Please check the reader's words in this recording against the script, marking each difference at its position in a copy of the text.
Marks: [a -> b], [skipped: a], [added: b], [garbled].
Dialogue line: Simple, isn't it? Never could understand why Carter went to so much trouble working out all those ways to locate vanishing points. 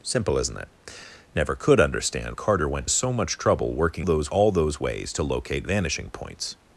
Simple, isn't it? Never could understand [skipped: why] Carter went [skipped: to] so much trouble working [out -> those] all those ways to locate vanishing points.